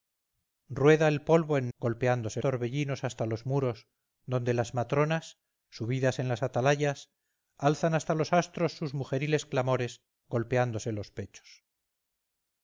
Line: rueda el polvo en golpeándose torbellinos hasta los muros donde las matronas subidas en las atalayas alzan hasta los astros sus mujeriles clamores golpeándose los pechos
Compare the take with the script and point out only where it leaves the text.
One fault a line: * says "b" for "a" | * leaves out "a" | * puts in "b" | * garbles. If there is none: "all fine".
all fine